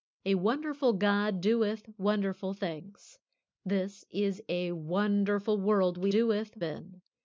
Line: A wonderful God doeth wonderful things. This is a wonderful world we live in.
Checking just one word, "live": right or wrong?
wrong